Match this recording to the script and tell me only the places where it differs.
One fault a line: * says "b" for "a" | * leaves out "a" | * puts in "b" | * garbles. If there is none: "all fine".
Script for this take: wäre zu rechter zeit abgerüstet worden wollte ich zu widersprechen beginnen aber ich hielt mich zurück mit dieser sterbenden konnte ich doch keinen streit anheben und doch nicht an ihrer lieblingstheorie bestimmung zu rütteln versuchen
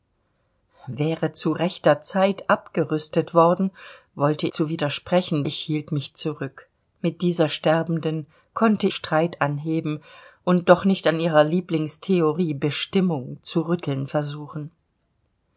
* leaves out "ich"
* leaves out "beginnen aber"
* leaves out "ich doch keinen"